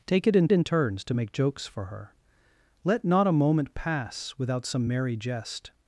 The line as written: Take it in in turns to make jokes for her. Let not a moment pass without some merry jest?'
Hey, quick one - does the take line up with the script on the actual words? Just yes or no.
yes